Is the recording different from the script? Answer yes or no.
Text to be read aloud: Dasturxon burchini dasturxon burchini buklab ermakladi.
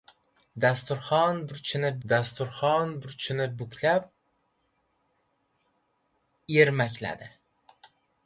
no